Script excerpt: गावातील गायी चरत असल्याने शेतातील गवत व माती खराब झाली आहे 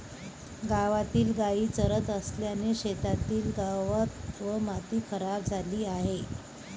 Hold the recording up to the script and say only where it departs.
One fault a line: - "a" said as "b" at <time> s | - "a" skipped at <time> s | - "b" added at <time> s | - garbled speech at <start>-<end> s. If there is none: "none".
none